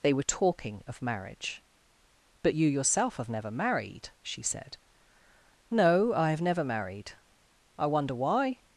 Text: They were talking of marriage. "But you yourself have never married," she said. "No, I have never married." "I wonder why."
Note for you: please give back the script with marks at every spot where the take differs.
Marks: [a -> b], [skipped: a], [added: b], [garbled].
They were talking of marriage. "But you yourself have never married," she said. "No, I have never married." "I wonder why."